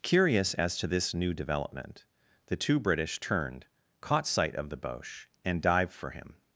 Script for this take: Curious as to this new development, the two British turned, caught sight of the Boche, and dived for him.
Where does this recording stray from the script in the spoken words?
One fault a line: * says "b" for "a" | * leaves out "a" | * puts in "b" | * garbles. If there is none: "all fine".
all fine